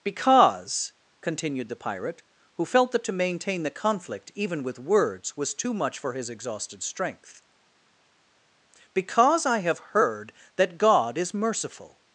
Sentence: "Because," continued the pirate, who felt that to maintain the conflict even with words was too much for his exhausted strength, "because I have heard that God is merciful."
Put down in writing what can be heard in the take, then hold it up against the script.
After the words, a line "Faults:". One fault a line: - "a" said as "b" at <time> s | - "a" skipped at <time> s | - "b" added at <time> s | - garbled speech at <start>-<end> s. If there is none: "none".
"Because," continued the pirate, who felt that to maintain the conflict even with words was too much for his exhausted strength, "because I have heard that God is merciful."
Faults:
none